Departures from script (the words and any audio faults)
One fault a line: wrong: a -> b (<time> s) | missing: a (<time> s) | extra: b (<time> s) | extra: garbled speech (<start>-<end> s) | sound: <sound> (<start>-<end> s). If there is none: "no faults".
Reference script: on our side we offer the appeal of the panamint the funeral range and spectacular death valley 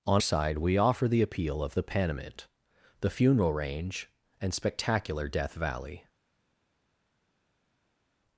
missing: our (0.2 s)